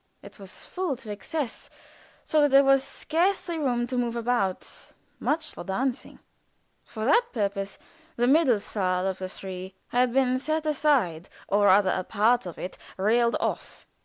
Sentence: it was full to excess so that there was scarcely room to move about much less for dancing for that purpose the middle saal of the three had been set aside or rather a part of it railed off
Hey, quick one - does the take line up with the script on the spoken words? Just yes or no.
no